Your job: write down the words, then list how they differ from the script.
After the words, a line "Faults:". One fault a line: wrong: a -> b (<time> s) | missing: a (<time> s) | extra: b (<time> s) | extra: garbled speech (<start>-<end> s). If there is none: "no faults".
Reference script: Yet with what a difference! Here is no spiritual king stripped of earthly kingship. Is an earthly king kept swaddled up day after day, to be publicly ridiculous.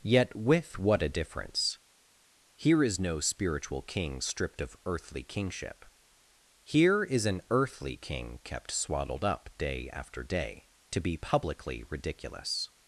Yet with what a difference! Here is no spiritual king stripped of earthly kingship. Here is an earthly king kept swaddled up day after day, to be publicly ridiculous.
Faults:
extra: Here (6.6 s)